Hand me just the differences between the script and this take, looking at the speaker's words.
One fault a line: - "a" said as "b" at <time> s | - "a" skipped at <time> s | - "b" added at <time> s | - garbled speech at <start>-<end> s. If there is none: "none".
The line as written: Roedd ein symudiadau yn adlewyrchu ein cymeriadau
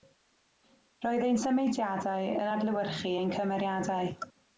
none